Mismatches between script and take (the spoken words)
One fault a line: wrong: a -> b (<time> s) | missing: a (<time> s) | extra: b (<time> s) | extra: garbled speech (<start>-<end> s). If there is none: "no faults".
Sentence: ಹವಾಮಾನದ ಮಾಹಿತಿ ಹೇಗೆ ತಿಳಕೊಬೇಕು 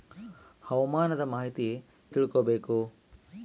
missing: ಹೇಗೆ (1.8 s)